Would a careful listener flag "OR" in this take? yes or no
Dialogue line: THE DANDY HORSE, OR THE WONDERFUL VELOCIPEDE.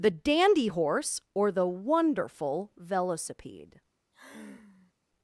no